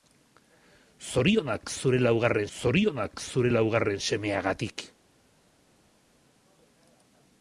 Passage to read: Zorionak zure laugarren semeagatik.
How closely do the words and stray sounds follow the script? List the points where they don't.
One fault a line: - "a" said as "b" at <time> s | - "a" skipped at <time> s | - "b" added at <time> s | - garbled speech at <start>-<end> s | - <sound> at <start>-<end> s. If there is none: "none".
- "zorionak zure laugarren" added at 2.6 s